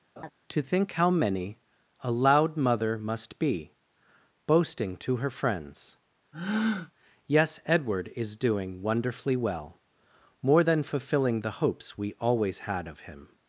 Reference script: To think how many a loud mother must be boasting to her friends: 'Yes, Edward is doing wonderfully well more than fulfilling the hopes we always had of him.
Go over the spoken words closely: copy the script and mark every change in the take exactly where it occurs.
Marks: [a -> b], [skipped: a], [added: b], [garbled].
To think how many a loud mother must be boasting to her friends: 'Yes, Edward is doing wonderfully well more than fulfilling the hopes we always had of him.